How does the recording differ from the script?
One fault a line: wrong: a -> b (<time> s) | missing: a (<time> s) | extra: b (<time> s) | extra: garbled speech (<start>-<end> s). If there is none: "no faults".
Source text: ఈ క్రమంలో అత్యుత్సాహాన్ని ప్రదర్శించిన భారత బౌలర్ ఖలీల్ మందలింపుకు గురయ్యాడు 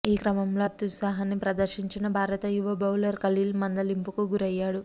extra: యువ (2.5 s)